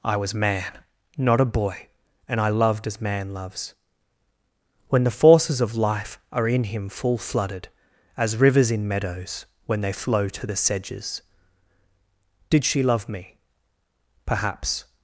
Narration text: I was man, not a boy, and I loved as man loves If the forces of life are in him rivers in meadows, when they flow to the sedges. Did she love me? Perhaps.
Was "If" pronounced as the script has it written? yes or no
no